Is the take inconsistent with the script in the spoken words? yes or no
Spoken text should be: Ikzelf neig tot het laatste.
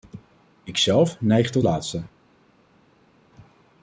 yes